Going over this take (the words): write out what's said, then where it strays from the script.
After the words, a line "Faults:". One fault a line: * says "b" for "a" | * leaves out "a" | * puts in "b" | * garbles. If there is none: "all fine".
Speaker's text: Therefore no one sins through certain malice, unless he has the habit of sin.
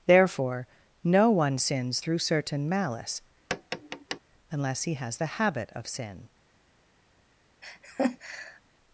Therefore no one sins through certain malice, unless he has the habit of sin.
Faults:
all fine